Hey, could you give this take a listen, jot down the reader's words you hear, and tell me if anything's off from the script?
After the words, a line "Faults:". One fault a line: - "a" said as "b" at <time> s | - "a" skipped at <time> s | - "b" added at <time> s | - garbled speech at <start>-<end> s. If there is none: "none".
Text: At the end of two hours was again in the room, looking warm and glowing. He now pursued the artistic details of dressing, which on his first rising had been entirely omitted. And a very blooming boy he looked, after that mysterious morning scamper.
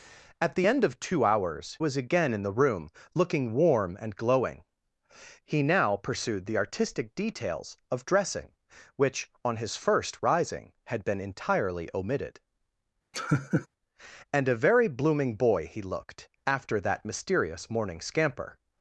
At the end of two hours was again in the room, looking warm and glowing. He now pursued the artistic details of dressing, which on his first rising had been entirely omitted. And a very blooming boy he looked, after that mysterious morning scamper.
Faults:
none